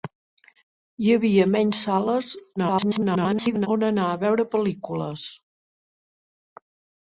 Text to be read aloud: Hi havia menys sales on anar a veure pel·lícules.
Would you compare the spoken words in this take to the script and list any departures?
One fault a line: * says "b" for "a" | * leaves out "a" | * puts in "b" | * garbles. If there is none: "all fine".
* garbles